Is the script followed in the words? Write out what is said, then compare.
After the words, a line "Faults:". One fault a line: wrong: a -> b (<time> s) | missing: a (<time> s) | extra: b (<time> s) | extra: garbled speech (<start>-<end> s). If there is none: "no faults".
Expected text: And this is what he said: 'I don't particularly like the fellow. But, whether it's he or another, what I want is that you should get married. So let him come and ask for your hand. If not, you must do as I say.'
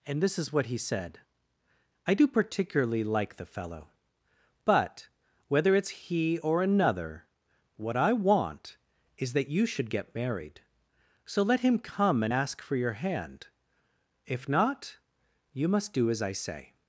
And this is what he said: 'I do particularly like the fellow. But, whether it's he or another, what I want is that you should get married. So let him come and ask for your hand. If not, you must do as I say.'
Faults:
wrong: don't -> do (2.2 s)